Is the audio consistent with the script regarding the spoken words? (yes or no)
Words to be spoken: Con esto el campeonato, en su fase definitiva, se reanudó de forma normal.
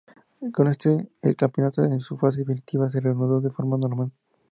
yes